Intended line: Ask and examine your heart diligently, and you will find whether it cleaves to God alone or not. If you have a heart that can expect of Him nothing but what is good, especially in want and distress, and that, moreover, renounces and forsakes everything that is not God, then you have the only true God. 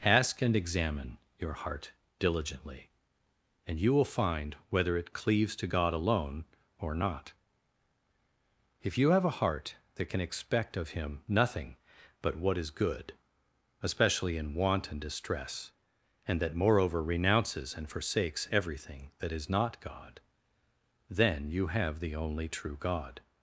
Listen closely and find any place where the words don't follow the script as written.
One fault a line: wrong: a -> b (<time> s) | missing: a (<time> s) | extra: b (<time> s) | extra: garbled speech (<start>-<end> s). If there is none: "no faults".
no faults